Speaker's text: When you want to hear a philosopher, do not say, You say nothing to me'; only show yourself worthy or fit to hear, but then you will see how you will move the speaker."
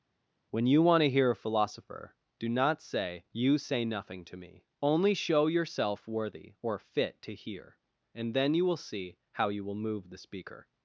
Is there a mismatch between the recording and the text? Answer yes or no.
yes